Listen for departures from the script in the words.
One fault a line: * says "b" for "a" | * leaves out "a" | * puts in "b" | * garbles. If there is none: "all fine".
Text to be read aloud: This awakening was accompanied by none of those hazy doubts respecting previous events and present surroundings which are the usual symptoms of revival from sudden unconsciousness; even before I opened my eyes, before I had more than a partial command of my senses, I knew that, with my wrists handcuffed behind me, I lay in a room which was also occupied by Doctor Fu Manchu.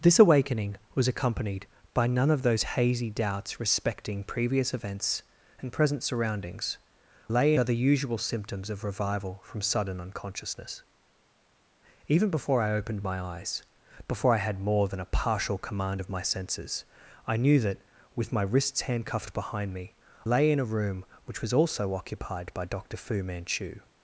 * says "lay" for "which"
* leaves out "I"